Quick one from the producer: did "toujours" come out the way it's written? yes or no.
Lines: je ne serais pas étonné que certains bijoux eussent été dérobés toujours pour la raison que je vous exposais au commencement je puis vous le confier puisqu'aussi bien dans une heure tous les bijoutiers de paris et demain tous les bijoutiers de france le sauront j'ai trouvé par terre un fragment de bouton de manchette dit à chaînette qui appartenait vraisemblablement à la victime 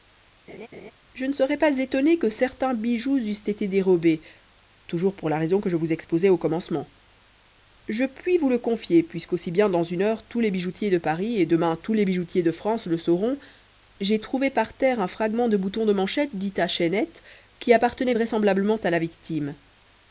yes